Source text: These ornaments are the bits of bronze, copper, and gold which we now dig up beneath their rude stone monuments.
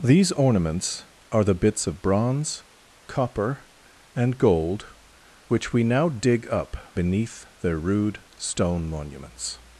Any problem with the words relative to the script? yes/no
no